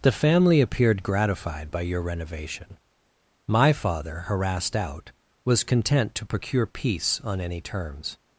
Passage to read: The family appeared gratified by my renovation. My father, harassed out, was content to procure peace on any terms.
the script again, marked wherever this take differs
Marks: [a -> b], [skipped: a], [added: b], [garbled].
The family appeared gratified by [my -> your] renovation. My father, harassed out, was content to procure peace on any terms.